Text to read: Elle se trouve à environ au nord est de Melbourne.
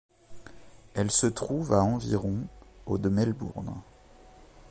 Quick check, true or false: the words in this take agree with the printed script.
false